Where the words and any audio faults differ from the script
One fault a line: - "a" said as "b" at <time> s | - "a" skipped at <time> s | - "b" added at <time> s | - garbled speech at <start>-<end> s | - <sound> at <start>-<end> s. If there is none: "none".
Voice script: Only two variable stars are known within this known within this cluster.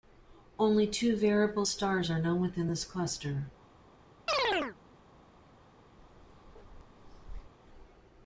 - "known within this" skipped at 2.8 s
- chirp at 4.3-4.8 s
- bark at 6.0-7.5 s